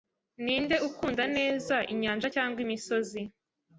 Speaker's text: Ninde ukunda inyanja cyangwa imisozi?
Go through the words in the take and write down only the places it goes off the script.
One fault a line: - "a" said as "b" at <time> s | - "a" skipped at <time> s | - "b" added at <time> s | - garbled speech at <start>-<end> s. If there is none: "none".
- "neza" added at 1.4 s